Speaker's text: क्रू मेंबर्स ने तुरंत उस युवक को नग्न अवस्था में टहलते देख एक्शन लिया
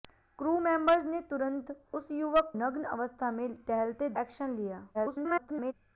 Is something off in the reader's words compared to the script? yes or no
yes